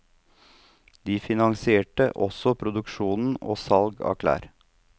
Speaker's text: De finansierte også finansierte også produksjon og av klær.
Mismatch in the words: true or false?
true